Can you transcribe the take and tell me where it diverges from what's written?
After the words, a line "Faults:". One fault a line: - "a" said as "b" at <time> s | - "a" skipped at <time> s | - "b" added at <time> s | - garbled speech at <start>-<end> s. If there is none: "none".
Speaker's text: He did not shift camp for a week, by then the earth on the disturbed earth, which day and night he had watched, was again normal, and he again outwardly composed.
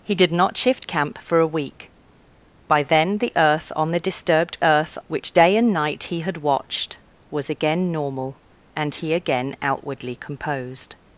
He did not shift camp for a week, by then the earth on the disturbed earth, which day and night he had watched, was again normal, and he again outwardly composed.
Faults:
none